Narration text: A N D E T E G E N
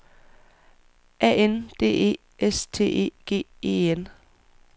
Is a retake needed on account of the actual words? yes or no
yes